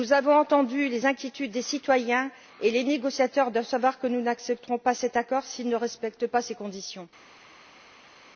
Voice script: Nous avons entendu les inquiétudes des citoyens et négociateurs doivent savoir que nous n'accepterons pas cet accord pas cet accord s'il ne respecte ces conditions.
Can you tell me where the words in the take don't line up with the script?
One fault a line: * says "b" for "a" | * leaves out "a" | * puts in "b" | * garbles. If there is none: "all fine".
* puts in "les"
* leaves out "pas cet accord"
* puts in "pas"